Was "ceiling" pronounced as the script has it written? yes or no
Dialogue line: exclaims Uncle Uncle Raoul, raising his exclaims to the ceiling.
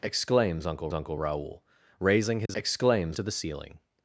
yes